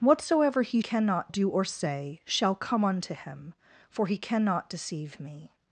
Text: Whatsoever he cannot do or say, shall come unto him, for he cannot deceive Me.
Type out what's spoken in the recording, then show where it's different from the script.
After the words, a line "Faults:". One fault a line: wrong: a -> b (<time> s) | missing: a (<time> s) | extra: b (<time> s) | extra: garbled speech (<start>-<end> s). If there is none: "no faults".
Whatsoever he cannot do or say, shall come unto him, for he cannot deceive Me.
Faults:
no faults